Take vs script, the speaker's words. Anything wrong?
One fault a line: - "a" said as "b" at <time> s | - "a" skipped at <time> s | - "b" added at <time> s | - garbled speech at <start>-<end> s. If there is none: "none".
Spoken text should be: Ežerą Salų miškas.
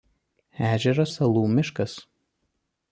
none